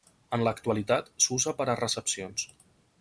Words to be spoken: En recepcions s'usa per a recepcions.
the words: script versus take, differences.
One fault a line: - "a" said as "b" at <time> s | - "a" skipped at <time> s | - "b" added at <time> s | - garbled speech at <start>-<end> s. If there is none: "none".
- "recepcions" said as "l'actualitat" at 0.5 s